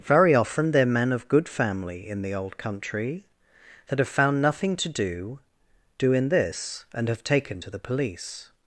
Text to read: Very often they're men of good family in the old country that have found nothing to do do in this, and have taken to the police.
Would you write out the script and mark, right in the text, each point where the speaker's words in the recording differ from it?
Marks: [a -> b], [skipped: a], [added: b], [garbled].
Very often they're men of good family in the old country that have found nothing to do do in this, and have taken to the police.